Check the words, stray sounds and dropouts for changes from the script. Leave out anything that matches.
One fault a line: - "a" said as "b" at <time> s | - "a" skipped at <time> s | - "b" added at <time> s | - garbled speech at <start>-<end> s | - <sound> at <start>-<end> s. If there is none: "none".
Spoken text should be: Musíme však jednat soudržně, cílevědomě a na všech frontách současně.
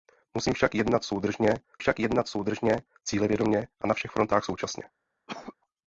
- "však jednat soudržně" added at 1.8 s
- cough at 5.3-5.6 s